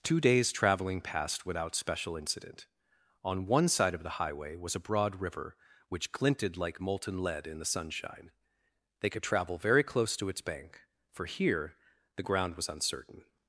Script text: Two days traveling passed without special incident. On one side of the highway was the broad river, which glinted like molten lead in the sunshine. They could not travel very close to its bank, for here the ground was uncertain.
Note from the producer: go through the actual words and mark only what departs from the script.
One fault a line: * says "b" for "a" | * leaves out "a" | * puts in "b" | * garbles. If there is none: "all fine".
* says "a" for "the"
* leaves out "not"